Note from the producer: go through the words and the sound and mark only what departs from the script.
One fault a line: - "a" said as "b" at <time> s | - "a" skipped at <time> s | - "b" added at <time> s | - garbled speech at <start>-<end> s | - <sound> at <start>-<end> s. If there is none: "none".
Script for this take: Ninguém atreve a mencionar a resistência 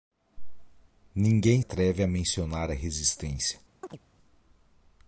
- chirp at 3.8-4.0 s